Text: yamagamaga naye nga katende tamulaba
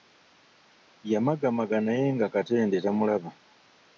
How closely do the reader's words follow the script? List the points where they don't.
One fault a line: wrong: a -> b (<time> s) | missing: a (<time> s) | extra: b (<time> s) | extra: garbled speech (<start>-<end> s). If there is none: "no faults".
no faults